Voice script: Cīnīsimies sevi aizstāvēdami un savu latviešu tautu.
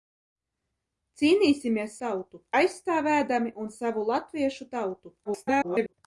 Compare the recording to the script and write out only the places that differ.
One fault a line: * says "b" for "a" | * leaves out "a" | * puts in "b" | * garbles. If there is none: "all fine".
* says "tautu" for "sevi"
* garbles